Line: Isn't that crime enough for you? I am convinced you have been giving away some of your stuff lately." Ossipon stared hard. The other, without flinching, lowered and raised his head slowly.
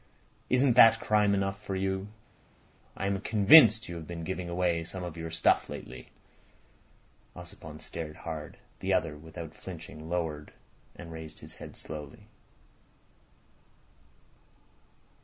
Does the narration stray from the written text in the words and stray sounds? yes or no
no